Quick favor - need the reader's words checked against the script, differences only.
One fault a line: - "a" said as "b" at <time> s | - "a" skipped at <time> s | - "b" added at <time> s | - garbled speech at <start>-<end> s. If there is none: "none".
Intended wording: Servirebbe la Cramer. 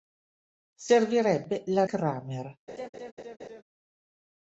none